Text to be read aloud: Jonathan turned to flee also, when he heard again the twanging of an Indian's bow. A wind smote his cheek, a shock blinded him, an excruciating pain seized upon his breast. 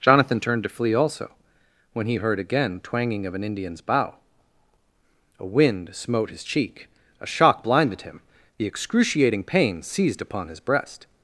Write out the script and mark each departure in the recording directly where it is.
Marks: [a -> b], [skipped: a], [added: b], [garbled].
Jonathan turned to flee also, when he heard again [skipped: the] twanging of an Indian's bow. A wind smote his cheek, a shock blinded him, [an -> the] excruciating pain seized upon his breast.